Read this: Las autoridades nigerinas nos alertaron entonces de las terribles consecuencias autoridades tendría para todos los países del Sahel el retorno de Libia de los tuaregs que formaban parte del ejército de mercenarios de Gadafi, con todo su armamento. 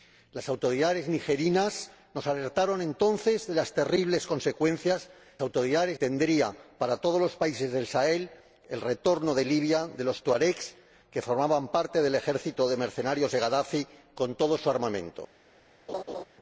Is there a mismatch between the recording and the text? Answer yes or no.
no